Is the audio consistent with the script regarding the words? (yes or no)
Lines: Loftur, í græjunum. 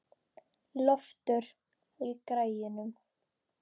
yes